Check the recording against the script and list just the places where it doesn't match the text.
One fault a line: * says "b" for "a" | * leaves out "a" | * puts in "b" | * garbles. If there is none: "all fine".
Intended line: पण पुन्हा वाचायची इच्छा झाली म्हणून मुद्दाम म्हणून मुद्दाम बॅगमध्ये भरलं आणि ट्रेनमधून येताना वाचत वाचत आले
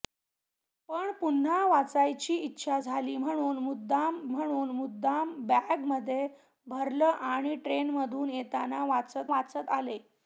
all fine